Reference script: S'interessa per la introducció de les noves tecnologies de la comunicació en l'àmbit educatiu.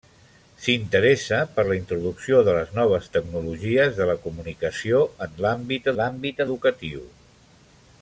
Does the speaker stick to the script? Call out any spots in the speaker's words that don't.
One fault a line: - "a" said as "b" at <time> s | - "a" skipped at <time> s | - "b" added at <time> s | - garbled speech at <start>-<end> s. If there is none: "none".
- "l'àmbit" added at 6.0 s